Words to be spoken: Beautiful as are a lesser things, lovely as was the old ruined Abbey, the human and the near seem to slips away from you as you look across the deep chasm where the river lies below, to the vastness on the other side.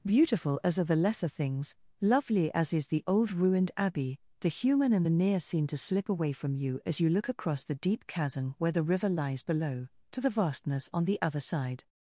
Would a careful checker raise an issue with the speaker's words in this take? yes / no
yes